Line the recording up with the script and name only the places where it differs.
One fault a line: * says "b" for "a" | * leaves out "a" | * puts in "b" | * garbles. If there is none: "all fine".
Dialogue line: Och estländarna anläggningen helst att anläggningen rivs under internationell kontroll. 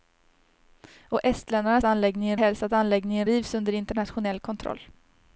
all fine